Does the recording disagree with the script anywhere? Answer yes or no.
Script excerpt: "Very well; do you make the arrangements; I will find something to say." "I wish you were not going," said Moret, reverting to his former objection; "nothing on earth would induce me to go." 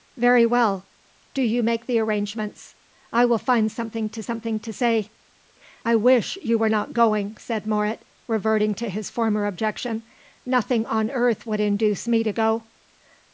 yes